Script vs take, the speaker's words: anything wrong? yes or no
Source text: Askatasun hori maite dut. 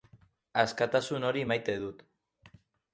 no